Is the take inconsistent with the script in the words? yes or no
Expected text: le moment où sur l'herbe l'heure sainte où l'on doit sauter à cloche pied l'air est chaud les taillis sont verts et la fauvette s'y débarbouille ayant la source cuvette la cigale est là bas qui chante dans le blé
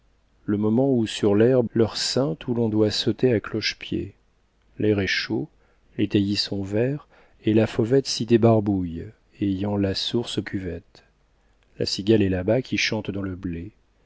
no